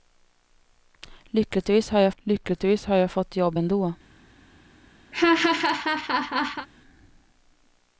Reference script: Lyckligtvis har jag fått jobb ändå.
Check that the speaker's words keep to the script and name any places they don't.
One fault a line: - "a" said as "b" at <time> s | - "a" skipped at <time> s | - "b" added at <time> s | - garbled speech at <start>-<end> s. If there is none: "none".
- "lyckligtvis har jag" added at 2.2 s